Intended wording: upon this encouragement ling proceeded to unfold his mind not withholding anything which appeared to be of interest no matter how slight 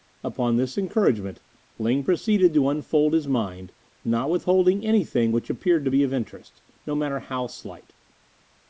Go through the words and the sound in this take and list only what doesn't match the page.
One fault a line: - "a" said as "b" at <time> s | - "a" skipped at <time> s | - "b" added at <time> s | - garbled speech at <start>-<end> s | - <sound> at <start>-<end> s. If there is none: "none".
none